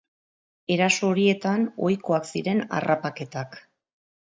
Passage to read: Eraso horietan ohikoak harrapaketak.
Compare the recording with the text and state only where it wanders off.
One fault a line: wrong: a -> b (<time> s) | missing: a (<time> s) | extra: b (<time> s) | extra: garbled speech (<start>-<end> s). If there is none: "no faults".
extra: ziren (2.3 s)